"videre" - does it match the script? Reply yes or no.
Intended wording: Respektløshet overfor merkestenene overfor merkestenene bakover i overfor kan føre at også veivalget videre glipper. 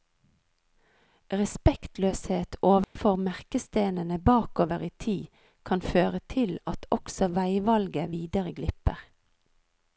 yes